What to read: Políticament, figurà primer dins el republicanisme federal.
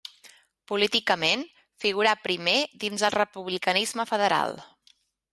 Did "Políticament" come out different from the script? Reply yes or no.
no